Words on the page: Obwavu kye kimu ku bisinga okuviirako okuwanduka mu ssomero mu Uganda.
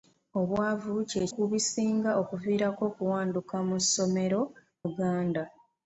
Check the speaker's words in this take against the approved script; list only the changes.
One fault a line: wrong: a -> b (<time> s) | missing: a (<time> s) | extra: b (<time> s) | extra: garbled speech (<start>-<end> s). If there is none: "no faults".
missing: kimu (1.2 s)
missing: mu (4.4 s)